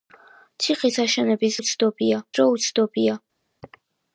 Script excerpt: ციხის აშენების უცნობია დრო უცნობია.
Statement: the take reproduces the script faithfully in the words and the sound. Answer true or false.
true